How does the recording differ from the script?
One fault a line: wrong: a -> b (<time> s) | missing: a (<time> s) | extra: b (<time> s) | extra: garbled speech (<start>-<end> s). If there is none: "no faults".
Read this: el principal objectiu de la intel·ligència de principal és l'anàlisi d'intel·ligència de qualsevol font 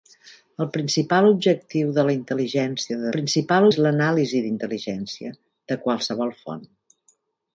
no faults